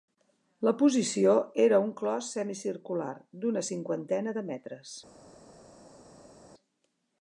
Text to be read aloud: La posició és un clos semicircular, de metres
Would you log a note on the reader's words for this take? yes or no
yes